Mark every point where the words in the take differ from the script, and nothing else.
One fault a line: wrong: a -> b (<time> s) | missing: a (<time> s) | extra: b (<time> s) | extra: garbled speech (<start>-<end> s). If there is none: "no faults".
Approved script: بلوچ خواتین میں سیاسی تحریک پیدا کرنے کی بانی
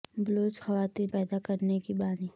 missing: میں سیاسی تحریک (1.1 s)